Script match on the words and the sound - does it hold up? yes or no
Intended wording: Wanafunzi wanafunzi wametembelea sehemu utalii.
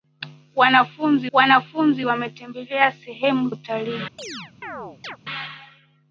no